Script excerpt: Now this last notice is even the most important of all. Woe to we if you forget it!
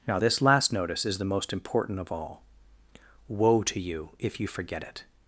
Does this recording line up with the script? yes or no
no